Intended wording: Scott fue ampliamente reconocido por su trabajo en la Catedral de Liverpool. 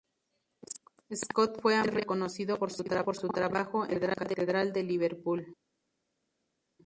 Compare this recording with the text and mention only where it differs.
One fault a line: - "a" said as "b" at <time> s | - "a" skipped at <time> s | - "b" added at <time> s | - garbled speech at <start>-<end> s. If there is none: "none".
none